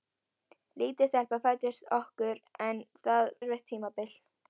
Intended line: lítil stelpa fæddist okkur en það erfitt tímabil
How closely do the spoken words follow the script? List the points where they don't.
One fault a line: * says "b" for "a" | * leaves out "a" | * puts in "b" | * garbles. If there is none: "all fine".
all fine